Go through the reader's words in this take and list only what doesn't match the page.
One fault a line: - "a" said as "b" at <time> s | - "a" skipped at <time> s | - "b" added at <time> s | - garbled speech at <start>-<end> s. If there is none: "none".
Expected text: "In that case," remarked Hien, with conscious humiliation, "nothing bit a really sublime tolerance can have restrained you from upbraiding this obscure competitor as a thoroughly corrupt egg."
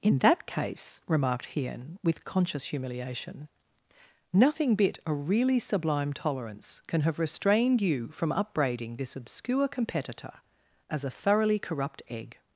none